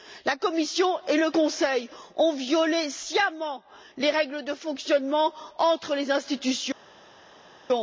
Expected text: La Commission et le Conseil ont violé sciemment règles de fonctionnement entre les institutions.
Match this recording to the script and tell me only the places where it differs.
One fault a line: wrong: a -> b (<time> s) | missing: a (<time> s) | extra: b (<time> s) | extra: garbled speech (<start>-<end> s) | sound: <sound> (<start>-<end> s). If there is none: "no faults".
extra: les (4.0 s)